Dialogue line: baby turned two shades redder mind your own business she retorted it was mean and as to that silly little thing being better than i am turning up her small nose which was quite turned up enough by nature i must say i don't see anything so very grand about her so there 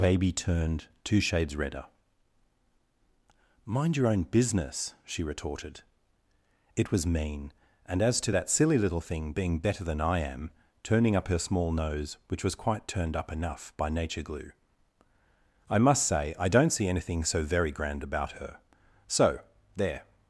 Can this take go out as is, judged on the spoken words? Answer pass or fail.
fail